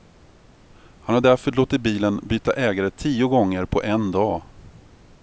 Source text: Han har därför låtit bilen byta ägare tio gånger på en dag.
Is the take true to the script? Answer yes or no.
yes